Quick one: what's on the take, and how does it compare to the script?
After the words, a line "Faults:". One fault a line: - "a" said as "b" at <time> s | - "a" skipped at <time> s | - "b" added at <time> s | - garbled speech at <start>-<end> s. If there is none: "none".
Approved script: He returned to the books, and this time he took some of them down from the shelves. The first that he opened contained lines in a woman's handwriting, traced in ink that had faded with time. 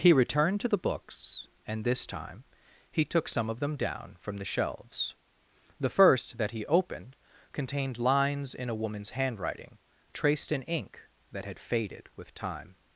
He returned to the books, and this time he took some of them down from the shelves. The first that he opened contained lines in a woman's handwriting, traced in ink that had faded with time.
Faults:
none